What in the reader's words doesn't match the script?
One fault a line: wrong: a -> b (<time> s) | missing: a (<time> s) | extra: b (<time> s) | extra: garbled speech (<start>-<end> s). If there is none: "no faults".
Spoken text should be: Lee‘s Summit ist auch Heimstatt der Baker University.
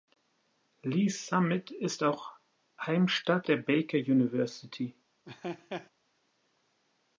no faults